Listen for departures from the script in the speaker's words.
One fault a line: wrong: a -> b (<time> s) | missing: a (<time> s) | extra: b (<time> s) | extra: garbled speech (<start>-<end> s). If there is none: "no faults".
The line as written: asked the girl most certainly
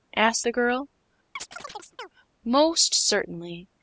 no faults